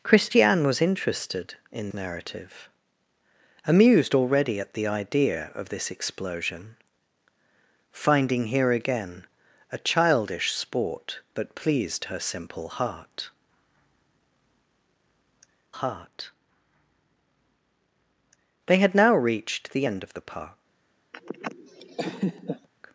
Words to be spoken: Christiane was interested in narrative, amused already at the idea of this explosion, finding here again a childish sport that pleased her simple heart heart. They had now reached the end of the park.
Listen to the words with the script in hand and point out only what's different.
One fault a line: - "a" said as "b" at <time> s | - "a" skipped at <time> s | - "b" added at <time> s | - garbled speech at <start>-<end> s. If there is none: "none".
none